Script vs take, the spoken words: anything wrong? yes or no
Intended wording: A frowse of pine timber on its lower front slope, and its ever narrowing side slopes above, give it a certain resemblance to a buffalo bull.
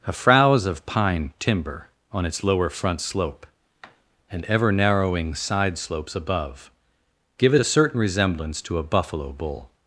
yes